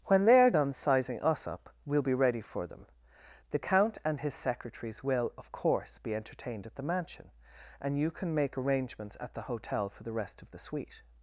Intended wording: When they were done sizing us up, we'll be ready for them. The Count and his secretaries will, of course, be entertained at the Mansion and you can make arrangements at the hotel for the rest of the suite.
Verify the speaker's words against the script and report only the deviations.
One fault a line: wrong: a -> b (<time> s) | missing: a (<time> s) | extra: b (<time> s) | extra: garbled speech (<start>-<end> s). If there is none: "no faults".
wrong: were -> are (0.4 s)